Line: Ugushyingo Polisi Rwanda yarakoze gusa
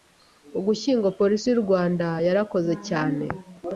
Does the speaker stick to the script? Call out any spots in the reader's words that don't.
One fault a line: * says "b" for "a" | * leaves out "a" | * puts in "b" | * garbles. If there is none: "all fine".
* puts in "y'u"
* says "cyane" for "gusa"